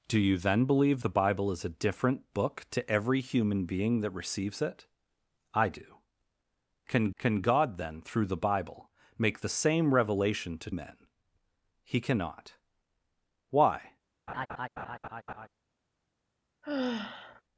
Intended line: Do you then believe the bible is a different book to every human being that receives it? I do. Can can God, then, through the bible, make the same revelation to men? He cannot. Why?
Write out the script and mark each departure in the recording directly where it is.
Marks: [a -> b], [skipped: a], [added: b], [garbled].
Do you then believe the bible is a different book to every human being that receives it? I do. Can can God, then, through the bible, make the same revelation to men? He cannot. Why?